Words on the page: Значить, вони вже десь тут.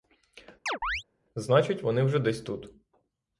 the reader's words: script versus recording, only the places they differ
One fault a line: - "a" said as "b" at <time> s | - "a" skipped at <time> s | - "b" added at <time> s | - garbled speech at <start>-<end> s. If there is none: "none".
none